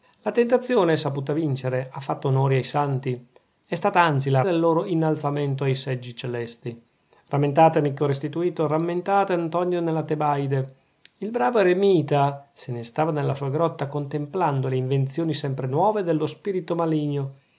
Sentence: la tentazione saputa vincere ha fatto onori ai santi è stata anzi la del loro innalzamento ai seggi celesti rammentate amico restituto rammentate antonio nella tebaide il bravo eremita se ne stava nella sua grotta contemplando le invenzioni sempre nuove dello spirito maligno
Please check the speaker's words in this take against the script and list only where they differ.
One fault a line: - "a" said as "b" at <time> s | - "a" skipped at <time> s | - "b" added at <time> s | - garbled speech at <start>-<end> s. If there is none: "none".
none